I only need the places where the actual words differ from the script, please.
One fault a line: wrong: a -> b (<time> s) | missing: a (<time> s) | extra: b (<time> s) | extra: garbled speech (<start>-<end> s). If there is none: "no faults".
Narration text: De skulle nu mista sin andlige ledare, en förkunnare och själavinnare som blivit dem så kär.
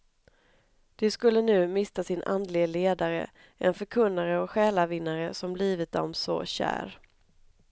no faults